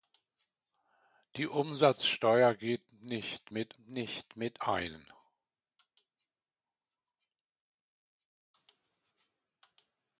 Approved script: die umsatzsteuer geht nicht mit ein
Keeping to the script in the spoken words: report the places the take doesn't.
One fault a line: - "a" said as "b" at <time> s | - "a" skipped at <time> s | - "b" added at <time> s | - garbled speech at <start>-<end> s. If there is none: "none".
- "nicht mit" added at 3.8 s